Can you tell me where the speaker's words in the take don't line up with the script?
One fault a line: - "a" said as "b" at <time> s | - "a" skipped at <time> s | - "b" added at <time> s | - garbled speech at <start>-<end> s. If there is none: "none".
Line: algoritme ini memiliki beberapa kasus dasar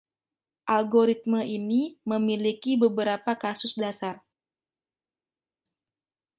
none